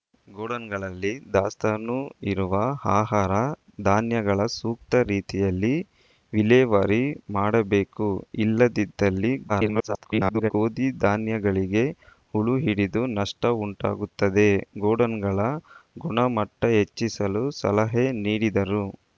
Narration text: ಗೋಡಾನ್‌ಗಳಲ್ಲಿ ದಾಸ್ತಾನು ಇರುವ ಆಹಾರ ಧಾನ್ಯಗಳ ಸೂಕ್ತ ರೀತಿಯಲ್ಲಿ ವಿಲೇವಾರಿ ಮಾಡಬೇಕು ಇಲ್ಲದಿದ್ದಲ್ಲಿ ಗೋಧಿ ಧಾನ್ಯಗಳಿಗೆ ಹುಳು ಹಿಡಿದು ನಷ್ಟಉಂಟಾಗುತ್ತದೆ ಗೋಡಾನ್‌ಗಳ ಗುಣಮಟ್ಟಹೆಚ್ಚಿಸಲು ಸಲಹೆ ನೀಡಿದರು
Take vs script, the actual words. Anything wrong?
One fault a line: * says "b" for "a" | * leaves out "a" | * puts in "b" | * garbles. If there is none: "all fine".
* garbles